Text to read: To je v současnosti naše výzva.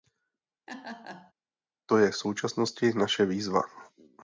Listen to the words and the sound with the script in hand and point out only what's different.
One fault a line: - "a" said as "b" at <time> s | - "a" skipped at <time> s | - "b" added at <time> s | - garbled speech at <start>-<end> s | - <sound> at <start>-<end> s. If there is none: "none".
- laugh at 0.7-1.3 s